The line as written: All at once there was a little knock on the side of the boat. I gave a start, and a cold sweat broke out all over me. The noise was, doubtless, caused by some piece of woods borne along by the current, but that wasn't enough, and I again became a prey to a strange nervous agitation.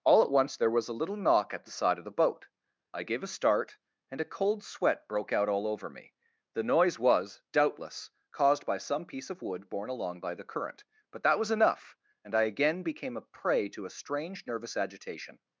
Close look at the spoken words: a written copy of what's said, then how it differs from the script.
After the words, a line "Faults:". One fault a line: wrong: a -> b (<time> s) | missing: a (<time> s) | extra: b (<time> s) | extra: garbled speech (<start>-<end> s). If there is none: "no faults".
All at once there was a little knock at the side of the boat. I gave a start, and a cold sweat broke out all over me. The noise was, doubtless, caused by some piece of wood borne along by the current, but that was enough, and I again became a prey to a strange nervous agitation.
Faults:
wrong: on -> at (1.5 s)
wrong: woods -> wood (9.4 s)
wrong: wasn't -> was (11.4 s)